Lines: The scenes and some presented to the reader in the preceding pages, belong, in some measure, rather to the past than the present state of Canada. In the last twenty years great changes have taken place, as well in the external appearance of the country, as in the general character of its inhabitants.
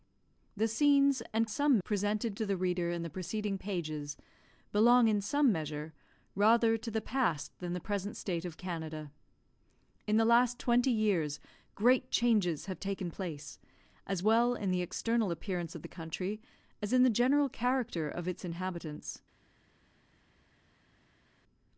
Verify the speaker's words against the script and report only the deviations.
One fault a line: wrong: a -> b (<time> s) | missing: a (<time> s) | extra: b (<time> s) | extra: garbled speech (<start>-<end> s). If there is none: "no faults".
no faults